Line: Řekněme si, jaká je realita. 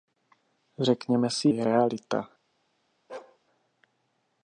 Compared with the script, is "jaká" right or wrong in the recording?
wrong